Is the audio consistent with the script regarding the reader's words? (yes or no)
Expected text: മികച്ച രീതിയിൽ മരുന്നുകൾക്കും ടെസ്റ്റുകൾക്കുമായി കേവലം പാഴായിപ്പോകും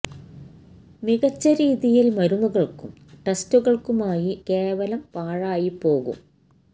yes